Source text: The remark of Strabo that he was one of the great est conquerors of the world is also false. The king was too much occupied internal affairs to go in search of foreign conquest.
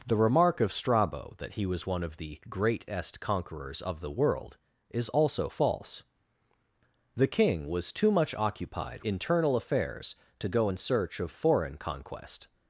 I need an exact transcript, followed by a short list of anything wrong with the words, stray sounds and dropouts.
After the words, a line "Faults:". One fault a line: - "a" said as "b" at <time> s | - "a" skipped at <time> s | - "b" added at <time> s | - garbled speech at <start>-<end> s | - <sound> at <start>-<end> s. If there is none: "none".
The remark of Strabo that he was one of the great est conquerors of the world is also false. The king was too much occupied internal affairs to go in search of foreign conquest.
Faults:
none